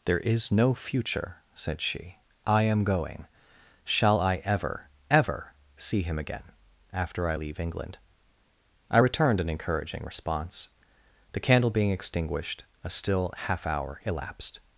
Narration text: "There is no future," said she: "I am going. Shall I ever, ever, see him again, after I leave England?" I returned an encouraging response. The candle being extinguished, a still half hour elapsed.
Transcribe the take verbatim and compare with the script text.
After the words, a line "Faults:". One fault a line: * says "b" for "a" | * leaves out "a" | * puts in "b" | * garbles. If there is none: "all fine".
"There is no future," said she: "I am going. Shall I ever, ever, see him again, after I leave England?" I returned an encouraging response. The candle being extinguished, a still half hour elapsed.
Faults:
all fine